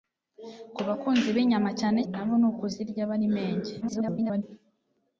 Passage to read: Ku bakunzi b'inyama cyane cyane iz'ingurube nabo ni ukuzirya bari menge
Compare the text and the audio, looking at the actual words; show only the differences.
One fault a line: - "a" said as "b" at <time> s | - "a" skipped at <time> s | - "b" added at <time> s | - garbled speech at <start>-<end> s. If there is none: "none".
- "cyane iz'ingurube" skipped at 2.0 s
- garbled speech at 3.8-4.4 s